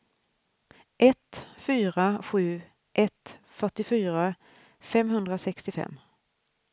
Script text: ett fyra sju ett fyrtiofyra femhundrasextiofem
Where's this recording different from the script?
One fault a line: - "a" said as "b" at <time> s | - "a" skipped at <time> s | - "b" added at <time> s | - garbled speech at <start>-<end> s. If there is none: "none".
none